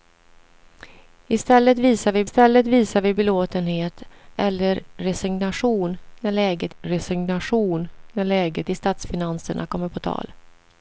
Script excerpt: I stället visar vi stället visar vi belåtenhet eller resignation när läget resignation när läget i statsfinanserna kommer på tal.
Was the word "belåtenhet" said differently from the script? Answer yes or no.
no